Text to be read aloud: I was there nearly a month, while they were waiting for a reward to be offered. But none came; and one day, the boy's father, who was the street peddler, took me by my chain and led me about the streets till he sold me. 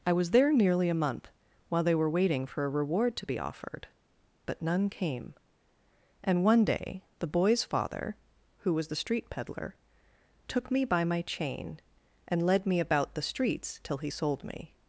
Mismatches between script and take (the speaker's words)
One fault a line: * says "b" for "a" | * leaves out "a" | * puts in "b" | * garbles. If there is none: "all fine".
all fine